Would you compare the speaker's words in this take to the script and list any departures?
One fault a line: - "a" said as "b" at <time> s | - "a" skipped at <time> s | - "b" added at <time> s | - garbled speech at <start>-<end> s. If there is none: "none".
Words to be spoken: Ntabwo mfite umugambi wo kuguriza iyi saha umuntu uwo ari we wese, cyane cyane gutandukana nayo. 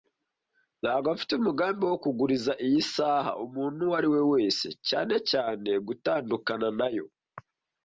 none